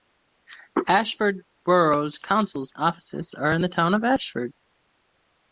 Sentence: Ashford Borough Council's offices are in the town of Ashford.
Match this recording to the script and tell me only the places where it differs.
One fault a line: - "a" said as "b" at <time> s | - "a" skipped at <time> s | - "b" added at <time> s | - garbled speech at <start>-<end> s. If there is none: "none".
none